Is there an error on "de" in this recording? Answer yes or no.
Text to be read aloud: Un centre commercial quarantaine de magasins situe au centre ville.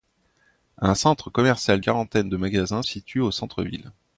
no